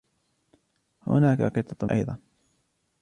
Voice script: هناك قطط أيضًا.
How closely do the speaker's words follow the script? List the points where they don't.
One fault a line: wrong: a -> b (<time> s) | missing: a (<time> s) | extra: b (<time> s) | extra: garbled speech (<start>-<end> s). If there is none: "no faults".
no faults